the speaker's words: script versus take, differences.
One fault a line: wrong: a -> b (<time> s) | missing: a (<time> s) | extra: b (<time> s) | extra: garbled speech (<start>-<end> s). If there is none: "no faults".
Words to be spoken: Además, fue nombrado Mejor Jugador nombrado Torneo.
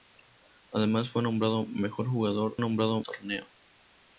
no faults